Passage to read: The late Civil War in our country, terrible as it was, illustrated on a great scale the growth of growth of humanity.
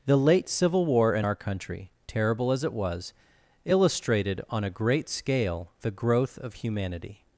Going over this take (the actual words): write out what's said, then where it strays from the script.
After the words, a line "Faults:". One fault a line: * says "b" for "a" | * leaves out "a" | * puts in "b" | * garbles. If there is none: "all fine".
The late Civil War in our country, terrible as it was, illustrated on a great scale the growth of humanity.
Faults:
* leaves out "growth of"